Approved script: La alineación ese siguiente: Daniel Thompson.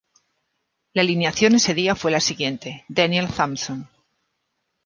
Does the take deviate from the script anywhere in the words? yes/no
yes